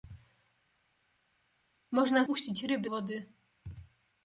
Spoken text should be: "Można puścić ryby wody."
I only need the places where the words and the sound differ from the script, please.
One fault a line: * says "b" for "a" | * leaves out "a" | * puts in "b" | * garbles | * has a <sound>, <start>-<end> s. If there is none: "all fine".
all fine